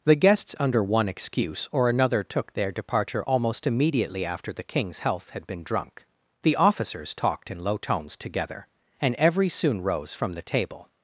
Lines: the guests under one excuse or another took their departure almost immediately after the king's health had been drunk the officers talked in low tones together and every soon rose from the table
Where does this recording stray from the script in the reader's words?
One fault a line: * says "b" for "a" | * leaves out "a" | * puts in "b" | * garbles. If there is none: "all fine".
all fine